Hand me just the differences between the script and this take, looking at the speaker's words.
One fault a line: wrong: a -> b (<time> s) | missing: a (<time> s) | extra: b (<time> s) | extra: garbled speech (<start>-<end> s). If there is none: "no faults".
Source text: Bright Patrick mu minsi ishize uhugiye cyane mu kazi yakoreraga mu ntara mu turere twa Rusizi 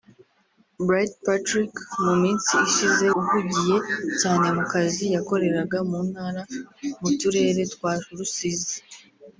no faults